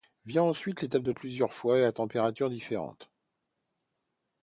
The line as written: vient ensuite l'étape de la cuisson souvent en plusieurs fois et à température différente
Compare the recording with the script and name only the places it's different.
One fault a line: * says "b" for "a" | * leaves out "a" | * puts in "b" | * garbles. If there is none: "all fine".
* leaves out "la cuisson souvent"